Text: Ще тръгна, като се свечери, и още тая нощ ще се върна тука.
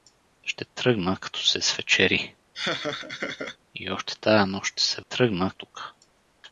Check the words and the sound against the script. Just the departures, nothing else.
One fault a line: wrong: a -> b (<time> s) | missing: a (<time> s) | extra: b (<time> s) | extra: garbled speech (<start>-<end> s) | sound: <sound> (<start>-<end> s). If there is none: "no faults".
sound: laugh (2.5-3.6 s)
wrong: върна -> тръгна (5.0 s)